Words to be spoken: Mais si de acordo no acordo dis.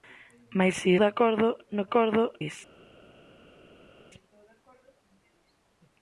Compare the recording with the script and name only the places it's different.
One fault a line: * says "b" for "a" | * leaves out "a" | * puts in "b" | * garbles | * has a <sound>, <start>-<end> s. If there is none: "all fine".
all fine